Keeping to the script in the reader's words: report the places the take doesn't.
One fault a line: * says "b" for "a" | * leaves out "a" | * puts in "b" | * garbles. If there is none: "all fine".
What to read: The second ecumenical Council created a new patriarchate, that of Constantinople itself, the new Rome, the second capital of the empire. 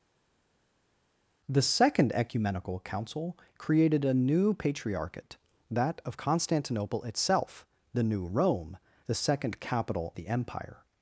* leaves out "of"